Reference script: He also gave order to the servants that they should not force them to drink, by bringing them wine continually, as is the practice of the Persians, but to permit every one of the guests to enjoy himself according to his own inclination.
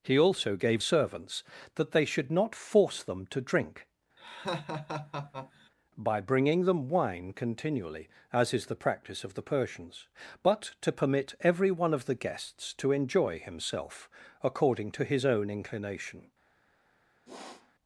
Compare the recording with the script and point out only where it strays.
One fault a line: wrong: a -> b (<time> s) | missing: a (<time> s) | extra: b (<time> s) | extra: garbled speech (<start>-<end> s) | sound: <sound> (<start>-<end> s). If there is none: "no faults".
missing: order to the (0.8 s)
sound: laugh (4.2-5.7 s)
sound: sniff (17.3-17.7 s)